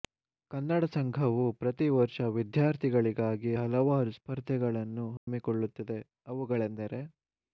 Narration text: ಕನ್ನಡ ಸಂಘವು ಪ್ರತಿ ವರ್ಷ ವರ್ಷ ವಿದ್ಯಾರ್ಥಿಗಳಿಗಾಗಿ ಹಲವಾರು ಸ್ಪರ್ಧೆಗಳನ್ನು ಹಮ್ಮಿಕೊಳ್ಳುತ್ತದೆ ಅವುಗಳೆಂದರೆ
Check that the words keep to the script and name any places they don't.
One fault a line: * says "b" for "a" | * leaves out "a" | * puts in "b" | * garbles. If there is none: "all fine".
* leaves out "ವರ್ಷ"